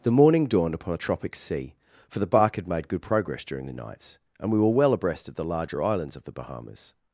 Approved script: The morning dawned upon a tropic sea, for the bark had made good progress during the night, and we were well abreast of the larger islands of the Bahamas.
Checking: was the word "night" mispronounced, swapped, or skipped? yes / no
yes